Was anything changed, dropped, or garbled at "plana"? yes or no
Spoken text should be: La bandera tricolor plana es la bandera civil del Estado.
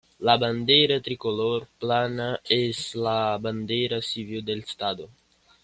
no